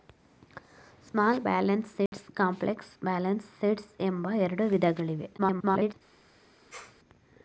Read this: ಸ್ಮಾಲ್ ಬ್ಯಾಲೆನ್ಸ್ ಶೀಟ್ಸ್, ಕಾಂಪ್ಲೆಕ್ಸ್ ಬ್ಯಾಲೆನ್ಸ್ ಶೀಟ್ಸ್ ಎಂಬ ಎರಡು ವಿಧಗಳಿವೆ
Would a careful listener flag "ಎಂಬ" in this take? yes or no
no